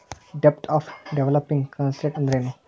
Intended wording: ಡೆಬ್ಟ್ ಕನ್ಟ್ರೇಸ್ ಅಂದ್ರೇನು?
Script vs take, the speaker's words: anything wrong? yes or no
yes